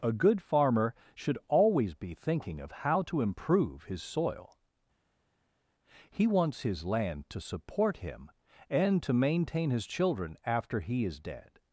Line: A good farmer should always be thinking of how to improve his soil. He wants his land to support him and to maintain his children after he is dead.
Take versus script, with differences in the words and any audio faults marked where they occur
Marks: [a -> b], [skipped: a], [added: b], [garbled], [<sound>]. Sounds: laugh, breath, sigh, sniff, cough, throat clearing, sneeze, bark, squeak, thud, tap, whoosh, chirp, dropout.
A good farmer should always be thinking of how to improve his soil. He wants his land to support him and to maintain his children after he is dead.